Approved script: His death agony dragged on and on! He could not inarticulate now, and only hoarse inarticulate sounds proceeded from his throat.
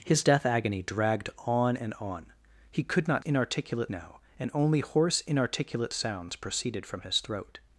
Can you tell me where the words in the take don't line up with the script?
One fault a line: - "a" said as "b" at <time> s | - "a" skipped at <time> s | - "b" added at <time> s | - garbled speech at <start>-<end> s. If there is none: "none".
none